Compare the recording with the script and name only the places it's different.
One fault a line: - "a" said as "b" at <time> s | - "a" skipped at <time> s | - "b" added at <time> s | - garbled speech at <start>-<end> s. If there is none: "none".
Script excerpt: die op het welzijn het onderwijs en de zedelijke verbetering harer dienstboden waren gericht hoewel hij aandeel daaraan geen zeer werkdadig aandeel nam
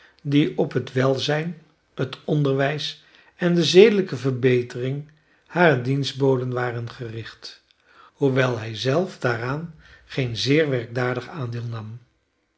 - "aandeel" said as "zelf" at 8.8 s